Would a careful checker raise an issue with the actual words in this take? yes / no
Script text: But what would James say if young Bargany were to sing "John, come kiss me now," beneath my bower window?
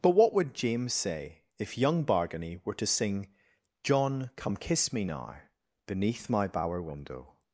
no